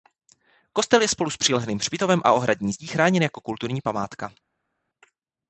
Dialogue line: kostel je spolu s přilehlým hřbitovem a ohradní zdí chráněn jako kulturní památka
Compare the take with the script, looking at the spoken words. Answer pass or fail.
pass